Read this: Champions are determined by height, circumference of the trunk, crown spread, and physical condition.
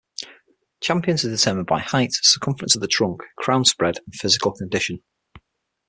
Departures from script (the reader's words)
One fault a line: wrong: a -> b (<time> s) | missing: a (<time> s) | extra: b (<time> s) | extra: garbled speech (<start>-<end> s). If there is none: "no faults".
no faults